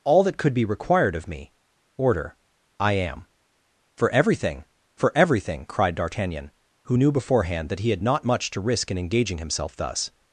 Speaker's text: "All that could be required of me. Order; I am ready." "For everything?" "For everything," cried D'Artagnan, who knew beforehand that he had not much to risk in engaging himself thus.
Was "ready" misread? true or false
true